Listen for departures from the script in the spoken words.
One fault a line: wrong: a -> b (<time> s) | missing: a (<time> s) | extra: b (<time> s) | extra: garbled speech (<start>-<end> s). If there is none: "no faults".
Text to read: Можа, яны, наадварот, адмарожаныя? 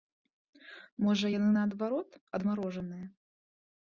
no faults